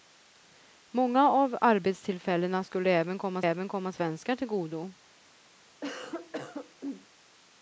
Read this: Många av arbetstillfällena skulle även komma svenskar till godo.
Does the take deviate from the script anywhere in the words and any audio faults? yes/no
yes